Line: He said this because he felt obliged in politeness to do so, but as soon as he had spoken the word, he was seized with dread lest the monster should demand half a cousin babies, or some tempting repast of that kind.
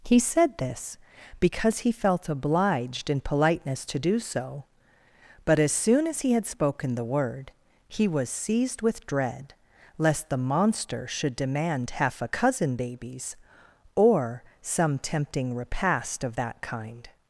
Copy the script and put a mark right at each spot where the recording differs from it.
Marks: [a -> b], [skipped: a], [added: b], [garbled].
He said this because he felt obliged in politeness to do so, but as soon as he had spoken the word, he was seized with dread lest the monster should demand half a cousin babies, or some tempting repast of that kind.